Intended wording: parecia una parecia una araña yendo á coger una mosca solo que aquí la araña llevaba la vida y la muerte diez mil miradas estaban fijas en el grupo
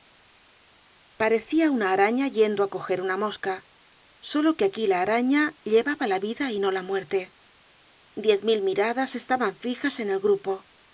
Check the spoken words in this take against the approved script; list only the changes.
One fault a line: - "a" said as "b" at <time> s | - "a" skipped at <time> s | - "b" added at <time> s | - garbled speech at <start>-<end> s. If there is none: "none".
- "parecia una" skipped at 1.9 s
- "no" added at 6.6 s